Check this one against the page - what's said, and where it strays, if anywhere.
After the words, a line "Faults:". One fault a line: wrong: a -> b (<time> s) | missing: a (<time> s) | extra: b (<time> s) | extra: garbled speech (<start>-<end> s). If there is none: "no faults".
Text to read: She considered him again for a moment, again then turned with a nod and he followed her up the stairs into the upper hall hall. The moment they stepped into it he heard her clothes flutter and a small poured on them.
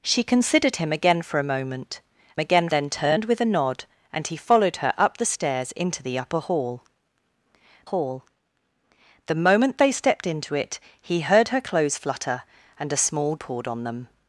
She considered him again for a moment, again then turned with a nod and he followed her up the stairs into the upper hall hall. The moment they stepped into it he heard her clothes flutter and a small poured on them.
Faults:
no faults